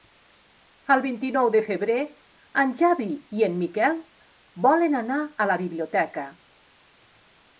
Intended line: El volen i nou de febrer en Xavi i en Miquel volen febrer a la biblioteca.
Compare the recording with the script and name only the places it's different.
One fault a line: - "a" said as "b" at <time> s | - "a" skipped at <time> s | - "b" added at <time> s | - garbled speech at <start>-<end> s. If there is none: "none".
- "volen" said as "vint" at 1.0 s
- "febrer" said as "anar" at 5.0 s